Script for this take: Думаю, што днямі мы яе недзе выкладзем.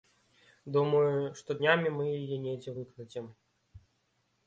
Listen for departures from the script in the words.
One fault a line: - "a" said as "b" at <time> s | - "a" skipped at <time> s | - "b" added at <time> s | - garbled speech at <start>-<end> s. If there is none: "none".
none